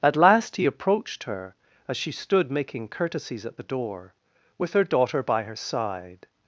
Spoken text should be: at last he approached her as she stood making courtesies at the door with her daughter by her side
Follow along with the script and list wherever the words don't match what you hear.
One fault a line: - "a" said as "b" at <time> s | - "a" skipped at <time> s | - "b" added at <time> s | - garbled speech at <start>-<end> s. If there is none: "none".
none